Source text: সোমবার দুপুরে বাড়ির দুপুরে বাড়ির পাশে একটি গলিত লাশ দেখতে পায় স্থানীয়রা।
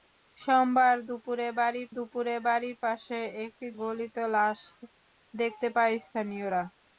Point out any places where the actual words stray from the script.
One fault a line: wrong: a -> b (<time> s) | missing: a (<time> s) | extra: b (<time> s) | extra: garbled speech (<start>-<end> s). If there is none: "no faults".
no faults